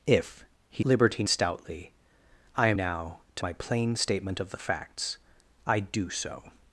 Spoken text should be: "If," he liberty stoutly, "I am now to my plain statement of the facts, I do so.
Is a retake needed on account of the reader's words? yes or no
no